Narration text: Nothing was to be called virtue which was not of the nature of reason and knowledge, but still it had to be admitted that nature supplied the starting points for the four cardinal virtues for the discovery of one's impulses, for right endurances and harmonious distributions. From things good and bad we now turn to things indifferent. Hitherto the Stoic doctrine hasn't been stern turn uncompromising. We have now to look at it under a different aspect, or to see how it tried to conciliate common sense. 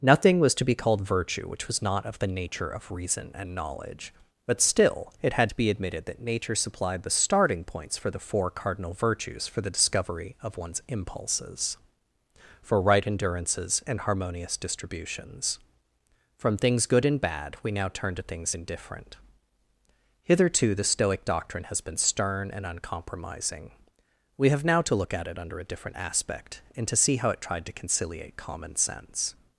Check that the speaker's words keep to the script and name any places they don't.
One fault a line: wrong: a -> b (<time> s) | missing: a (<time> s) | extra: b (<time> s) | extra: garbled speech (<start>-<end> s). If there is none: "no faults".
wrong: hasn't -> has (21.6 s)
wrong: turn -> and (22.5 s)
wrong: or -> and (26.7 s)